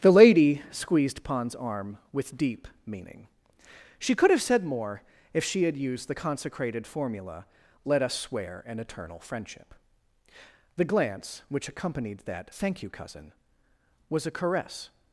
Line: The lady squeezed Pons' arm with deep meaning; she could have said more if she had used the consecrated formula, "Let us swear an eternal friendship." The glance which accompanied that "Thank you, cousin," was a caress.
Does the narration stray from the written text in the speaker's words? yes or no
no